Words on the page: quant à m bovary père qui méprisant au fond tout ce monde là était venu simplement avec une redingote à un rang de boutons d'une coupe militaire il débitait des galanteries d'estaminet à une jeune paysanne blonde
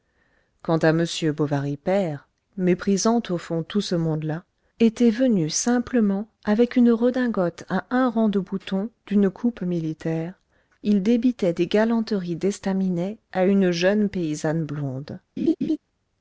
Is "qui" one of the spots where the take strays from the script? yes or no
yes